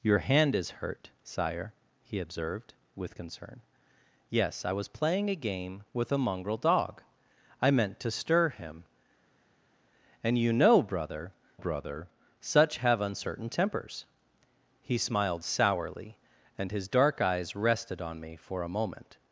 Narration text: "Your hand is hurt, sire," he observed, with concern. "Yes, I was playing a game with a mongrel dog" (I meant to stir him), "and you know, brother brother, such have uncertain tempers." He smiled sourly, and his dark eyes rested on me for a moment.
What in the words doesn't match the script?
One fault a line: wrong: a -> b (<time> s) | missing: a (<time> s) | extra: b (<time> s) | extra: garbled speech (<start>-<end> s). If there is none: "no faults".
no faults